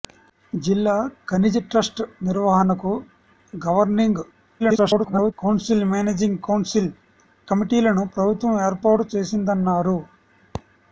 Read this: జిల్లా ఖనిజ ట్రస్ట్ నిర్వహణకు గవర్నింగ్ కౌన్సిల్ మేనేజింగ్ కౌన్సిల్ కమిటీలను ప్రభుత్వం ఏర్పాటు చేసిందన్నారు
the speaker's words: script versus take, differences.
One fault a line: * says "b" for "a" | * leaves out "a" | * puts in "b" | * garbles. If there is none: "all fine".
* garbles